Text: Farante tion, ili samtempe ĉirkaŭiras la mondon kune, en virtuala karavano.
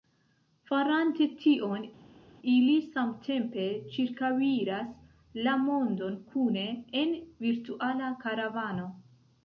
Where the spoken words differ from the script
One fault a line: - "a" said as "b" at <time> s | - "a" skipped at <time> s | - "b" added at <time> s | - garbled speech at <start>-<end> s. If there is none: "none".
none